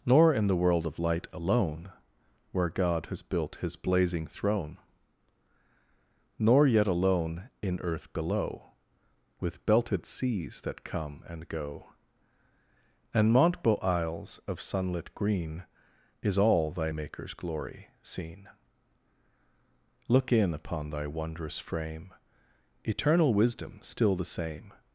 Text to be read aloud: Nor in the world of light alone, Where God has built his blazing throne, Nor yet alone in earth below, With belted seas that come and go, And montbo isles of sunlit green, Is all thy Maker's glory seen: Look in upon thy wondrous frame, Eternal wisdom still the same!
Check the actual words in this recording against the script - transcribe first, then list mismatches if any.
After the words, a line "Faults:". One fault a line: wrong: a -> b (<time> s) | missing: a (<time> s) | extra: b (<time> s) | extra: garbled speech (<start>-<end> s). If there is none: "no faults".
Nor in the world of light alone, Where God has built his blazing throne, Nor yet alone in earth below, With belted seas that come and go, And montbo isles of sunlit green, Is all thy Maker's glory seen: Look in upon thy wondrous frame, Eternal wisdom still the same!
Faults:
no faults